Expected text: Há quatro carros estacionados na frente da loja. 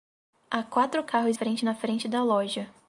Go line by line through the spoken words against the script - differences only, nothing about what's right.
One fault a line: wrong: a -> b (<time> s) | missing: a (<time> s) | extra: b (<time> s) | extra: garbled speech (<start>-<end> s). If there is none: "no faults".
wrong: estacionados -> frente (1.3 s)